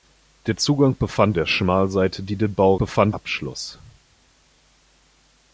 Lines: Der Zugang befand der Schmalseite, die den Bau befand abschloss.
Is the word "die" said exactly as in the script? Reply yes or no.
yes